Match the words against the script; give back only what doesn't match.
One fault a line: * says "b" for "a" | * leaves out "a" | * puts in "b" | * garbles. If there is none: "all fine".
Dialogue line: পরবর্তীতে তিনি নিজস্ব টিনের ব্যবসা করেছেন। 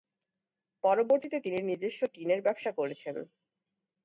all fine